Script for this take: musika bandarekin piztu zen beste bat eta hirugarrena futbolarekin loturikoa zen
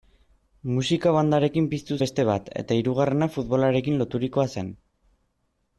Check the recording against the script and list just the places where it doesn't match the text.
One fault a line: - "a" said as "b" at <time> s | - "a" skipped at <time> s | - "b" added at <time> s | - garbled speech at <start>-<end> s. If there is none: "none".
- "zen" skipped at 2.0 s